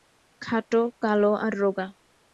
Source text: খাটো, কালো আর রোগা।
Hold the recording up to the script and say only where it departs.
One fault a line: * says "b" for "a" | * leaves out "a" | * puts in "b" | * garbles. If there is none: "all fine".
all fine